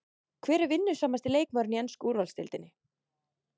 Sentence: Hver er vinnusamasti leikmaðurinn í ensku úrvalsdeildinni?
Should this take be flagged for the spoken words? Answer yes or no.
no